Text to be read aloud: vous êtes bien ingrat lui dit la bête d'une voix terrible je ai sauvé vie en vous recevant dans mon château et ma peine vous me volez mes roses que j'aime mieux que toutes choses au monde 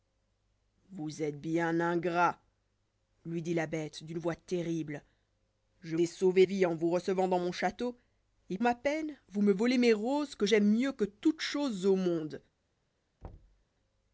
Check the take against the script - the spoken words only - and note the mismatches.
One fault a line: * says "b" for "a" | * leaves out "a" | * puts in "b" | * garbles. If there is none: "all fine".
all fine